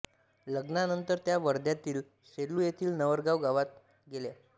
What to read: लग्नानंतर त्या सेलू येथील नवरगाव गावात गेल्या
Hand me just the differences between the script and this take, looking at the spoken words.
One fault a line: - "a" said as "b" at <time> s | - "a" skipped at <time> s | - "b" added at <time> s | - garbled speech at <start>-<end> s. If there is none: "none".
- "वर्ध्यातील" added at 1.4 s